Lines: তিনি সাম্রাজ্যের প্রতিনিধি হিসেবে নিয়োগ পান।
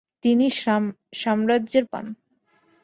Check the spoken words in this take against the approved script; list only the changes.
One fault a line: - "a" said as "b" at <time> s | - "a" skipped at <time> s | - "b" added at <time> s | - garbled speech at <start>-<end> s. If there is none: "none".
- "প্রতিনিধি হিসেবে নিয়োগ" skipped at 1.8 s